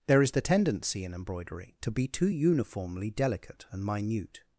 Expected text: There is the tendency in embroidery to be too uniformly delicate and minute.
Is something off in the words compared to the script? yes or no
no